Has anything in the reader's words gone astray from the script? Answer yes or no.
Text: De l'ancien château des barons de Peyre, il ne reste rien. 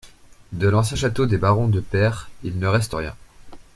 no